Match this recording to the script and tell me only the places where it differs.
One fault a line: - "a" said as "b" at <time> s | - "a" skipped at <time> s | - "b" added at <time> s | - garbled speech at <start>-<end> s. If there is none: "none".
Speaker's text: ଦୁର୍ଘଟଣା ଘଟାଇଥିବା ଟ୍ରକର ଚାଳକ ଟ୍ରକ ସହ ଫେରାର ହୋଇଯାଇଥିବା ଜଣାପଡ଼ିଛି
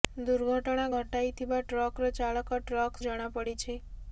- "ସହ ଫେରାର ହୋଇଯାଇଥିବା" skipped at 3.0 s